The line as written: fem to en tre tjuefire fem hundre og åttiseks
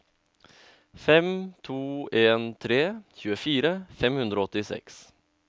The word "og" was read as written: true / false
true